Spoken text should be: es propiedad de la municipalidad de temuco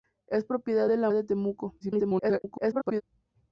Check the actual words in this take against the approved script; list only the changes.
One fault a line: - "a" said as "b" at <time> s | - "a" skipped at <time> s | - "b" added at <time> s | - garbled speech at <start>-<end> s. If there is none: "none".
- "municipalidad" skipped at 1.1 s
- garbled speech at 1.8-3.0 s